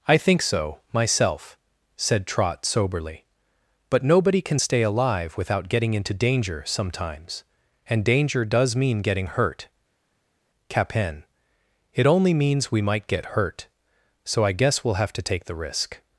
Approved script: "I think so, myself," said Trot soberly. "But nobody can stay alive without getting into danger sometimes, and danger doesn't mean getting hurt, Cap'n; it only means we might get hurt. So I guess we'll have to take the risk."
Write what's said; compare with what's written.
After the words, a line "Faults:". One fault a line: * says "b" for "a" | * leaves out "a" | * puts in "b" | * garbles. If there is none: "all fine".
"I think so, myself," said Trot soberly. "But nobody can stay alive without getting into danger sometimes, and danger does mean getting hurt, Cap'n; it only means we might get hurt. So I guess we'll have to take the risk."
Faults:
* says "does" for "doesn't"